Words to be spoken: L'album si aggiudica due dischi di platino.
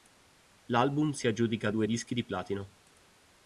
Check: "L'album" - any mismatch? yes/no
no